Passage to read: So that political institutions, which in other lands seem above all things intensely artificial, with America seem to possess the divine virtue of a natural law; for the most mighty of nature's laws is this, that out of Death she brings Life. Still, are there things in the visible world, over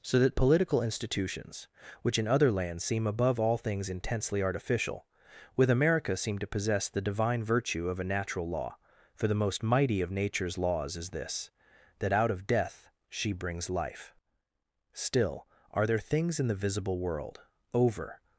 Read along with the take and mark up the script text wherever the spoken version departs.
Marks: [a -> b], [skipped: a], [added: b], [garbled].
So that political institutions, which in other lands seem above all things intensely artificial, with America seem to possess the divine virtue of a natural law; for the most mighty of nature's laws is this, that out of Death she brings Life. Still, are there things in the visible world, over